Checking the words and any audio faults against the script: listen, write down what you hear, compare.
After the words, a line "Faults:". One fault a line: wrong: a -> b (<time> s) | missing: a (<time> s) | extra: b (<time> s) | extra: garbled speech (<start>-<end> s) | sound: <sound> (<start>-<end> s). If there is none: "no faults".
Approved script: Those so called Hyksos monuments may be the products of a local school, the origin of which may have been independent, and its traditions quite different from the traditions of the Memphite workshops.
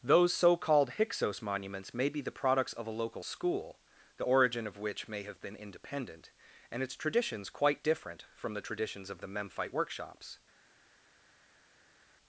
Those so called Hyksos monuments may be the products of a local school, the origin of which may have been independent, and its traditions quite different from the traditions of the Memphite workshops.
Faults:
no faults